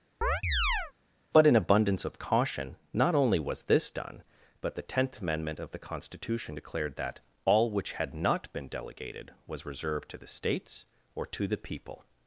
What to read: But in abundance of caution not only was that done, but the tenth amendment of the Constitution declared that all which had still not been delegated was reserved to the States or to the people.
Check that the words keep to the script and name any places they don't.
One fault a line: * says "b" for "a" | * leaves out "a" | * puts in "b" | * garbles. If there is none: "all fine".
* says "this" for "that"
* leaves out "still"